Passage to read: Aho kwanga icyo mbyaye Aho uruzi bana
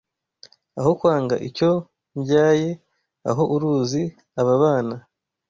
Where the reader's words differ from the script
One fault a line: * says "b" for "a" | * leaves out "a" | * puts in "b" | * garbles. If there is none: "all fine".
* puts in "aba"